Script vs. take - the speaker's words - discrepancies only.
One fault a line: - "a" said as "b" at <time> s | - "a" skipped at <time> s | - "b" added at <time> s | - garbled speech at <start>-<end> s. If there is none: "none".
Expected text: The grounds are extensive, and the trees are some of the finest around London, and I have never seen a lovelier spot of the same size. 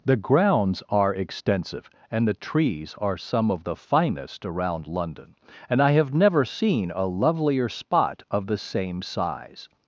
none